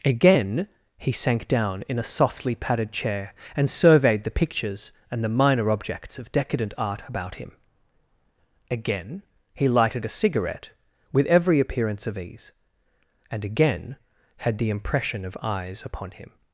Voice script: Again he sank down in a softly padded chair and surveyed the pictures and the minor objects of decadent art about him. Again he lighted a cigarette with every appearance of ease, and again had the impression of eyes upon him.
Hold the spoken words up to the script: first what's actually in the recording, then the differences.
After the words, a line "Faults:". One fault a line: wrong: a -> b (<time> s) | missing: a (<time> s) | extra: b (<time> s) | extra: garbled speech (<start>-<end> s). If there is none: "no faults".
Again he sank down in a softly padded chair and surveyed the pictures and the minor objects of decadent art about him. Again he lighted a cigarette with every appearance of ease, and again had the impression of eyes upon him.
Faults:
no faults